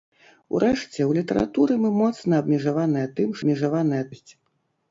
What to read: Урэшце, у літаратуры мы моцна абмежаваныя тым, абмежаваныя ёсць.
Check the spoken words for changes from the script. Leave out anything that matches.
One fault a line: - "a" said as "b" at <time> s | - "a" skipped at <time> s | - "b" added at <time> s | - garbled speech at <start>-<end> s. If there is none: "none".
none